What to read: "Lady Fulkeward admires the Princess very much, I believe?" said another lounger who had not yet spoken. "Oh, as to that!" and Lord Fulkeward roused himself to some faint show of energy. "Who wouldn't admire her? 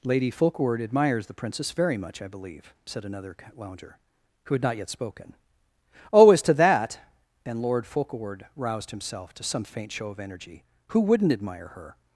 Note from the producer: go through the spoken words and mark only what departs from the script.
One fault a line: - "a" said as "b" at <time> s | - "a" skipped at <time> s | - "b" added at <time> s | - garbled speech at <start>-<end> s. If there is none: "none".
none